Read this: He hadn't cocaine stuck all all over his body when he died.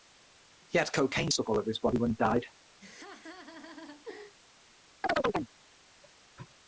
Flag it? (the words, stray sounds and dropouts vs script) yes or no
yes